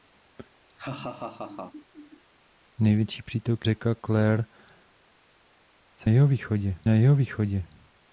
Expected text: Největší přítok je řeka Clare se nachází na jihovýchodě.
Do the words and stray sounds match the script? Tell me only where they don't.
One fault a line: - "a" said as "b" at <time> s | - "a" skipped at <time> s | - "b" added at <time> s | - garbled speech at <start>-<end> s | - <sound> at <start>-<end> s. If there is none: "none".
- laugh at 0.7-2.2 s
- "je" skipped at 3.7 s
- "nachází" said as "jihovýchodě" at 6.1 s